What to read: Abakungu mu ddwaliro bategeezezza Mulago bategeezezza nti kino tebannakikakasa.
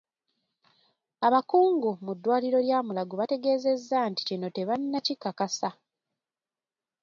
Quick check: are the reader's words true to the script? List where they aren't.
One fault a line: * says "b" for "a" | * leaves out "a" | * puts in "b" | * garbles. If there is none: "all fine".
* says "lya" for "bategeezezza"